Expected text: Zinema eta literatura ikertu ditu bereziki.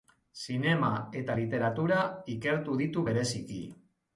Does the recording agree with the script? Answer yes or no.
yes